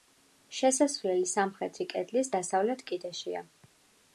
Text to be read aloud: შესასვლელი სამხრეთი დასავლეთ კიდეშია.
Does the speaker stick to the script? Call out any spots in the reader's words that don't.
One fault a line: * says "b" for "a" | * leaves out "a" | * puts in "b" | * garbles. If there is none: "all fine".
* puts in "კედლის"